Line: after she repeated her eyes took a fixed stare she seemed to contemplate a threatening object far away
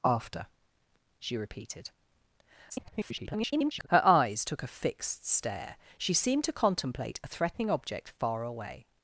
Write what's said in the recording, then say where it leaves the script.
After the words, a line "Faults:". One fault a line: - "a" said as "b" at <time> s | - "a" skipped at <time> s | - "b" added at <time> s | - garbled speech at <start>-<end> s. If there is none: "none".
after she repeated [garbled] her eyes took a fixed stare she seemed to contemplate a threatening object far away
Faults:
- garbled speech at 2.7-3.9 s